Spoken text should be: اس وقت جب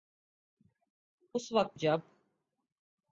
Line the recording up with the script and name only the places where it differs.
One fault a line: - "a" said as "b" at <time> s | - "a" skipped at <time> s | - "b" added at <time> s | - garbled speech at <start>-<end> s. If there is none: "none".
none